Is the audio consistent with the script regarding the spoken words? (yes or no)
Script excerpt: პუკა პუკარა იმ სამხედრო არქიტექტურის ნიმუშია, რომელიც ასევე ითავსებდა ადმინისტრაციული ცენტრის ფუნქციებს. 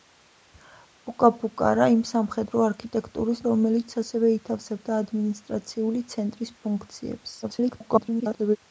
no